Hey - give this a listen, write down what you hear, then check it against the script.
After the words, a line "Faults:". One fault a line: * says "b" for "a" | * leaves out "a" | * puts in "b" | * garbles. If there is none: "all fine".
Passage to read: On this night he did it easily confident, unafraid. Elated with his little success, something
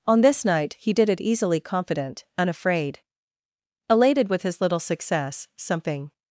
On this night he did it easily confident, unafraid. Elated with his little success, something
Faults:
all fine